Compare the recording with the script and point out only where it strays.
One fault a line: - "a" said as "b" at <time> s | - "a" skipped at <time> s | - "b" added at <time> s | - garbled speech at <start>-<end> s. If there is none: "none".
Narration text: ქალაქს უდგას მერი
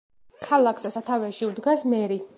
- "სათავეში" added at 0.9 s